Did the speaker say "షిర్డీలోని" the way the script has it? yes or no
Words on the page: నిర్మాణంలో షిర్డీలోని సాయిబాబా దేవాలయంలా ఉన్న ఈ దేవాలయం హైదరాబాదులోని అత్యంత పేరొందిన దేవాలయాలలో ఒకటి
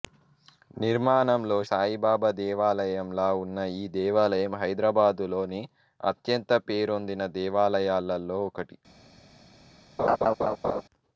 no